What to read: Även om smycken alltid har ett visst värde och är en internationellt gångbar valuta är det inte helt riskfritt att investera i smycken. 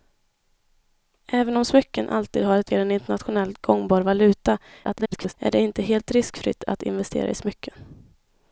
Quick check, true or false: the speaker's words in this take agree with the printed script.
false